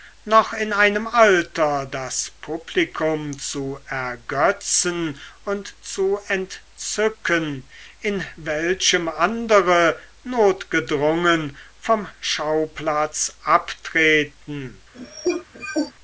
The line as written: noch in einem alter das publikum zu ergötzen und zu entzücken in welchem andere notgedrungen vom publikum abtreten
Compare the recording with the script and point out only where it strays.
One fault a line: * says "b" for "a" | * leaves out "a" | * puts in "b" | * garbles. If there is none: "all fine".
* says "schauplatz" for "publikum"